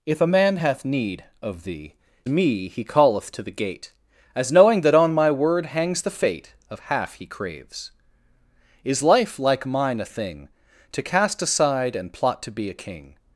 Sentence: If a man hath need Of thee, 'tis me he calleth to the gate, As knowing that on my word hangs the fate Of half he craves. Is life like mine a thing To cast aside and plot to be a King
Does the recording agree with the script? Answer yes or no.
no